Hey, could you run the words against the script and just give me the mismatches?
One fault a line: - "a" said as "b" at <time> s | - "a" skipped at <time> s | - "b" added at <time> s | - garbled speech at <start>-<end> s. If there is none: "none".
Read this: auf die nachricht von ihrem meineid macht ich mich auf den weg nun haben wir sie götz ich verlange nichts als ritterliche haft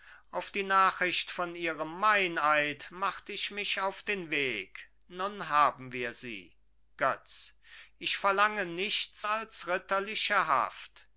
none